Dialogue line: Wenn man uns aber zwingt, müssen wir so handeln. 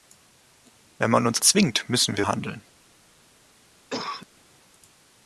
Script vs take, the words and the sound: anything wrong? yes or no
yes